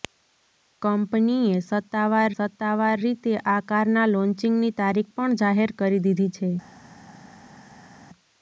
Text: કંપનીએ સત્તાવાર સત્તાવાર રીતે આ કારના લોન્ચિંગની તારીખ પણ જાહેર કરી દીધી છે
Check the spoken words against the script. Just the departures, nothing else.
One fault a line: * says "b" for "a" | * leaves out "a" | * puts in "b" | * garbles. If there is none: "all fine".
all fine